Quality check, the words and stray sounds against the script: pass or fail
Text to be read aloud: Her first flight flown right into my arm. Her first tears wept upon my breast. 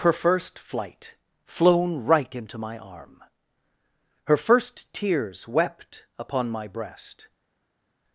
pass